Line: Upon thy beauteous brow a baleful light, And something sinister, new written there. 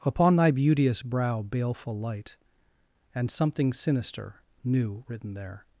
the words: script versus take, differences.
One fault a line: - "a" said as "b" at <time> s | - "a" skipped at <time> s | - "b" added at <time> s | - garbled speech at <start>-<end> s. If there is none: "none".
- "a" skipped at 1.4 s